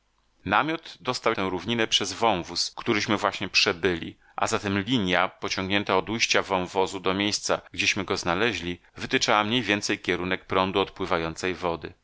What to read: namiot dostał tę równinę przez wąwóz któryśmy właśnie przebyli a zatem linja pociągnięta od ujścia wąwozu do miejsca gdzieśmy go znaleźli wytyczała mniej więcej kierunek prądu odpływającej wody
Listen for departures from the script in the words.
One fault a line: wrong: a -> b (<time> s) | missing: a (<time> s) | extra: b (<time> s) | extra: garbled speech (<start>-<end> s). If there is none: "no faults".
no faults